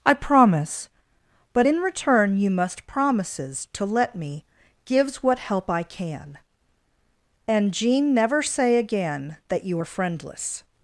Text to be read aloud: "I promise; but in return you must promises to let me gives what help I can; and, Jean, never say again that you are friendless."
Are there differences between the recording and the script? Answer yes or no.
no